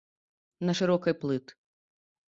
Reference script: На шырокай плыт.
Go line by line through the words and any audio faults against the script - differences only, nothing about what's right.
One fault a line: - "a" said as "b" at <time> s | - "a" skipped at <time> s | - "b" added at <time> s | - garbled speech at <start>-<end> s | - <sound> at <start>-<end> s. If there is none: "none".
none